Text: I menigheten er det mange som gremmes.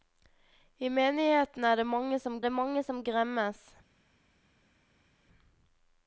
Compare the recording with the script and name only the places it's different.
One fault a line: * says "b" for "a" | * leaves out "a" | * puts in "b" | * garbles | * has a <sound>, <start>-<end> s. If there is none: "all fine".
* puts in "det mange som"